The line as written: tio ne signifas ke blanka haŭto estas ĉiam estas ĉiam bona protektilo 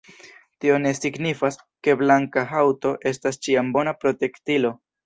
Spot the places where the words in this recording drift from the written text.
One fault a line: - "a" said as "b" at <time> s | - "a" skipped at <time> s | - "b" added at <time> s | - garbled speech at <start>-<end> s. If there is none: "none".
- "estas ĉiam" skipped at 3.7 s